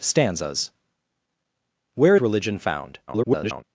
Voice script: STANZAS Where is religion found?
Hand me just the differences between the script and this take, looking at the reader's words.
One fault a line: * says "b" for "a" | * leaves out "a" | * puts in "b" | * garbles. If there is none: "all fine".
* leaves out "is"
* garbles